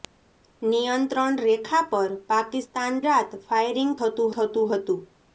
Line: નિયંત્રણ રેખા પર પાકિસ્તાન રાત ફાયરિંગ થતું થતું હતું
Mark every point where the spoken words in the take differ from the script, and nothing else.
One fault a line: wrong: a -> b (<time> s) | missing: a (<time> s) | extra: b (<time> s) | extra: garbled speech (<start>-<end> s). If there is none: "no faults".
no faults